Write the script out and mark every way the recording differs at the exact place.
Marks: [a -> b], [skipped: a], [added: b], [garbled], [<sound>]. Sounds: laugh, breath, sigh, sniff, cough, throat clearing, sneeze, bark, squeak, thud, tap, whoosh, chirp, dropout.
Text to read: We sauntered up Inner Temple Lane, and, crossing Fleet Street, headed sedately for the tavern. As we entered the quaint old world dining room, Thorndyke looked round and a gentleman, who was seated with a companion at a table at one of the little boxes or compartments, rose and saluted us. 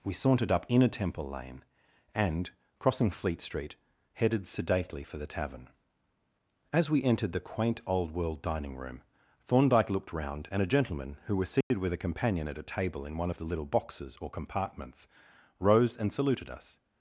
We sauntered up Inner Temple Lane, and, crossing Fleet Street, headed sedately for the tavern. As we entered the quaint old world dining room, Thorndyke looked round and a gentleman, who was seated [dropout] with a companion at a table [at -> in] one of the little boxes or compartments, rose and saluted us.